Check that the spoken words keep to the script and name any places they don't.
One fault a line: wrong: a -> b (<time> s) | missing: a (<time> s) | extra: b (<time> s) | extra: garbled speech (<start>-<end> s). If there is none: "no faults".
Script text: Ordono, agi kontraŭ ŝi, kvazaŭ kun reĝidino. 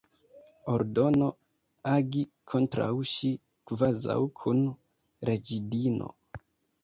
no faults